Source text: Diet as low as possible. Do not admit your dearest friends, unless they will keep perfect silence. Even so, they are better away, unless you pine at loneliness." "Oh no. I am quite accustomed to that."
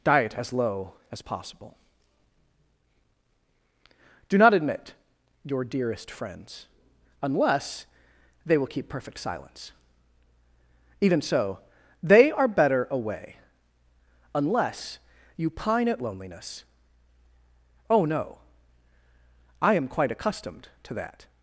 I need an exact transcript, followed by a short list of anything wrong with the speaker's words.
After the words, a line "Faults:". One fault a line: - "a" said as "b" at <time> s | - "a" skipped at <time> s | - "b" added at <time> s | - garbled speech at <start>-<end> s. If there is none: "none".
Diet as low as possible. Do not admit your dearest friends, unless they will keep perfect silence. Even so, they are better away, unless you pine at loneliness." "Oh no. I am quite accustomed to that."
Faults:
none